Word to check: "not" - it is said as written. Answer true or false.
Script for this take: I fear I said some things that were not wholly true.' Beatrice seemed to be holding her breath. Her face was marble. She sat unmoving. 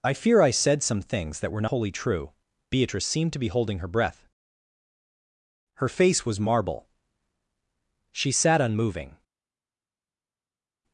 false